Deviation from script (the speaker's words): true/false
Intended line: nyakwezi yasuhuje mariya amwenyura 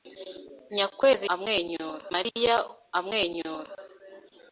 true